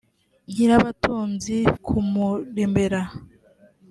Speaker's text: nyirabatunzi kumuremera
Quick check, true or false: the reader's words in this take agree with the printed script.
true